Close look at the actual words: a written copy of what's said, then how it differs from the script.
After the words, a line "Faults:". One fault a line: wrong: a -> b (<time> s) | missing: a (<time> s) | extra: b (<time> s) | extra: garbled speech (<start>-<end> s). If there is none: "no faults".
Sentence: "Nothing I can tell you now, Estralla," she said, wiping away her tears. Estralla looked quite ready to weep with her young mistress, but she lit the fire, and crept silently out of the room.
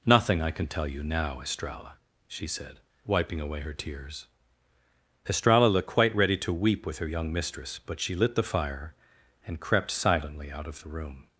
"Nothing I can tell you now, Estralla," she said, wiping away her tears. Estralla looked quite ready to weep with her young mistress, but she lit the fire, and crept silently out of the room.
Faults:
no faults